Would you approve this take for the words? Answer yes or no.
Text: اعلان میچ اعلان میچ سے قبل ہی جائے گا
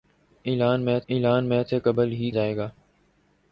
yes